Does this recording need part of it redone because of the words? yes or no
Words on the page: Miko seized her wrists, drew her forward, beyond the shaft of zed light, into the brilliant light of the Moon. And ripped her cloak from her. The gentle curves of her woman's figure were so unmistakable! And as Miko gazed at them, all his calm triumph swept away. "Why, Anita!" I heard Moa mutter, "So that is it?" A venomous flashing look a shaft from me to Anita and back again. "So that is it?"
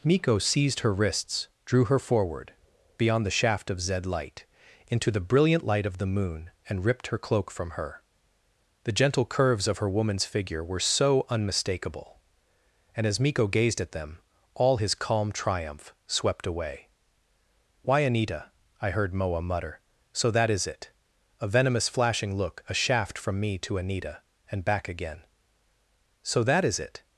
no